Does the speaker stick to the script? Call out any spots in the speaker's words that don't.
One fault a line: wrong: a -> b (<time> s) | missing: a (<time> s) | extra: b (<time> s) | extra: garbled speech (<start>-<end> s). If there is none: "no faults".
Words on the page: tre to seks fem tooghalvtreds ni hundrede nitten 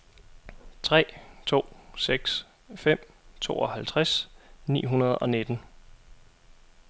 extra: og (5.1 s)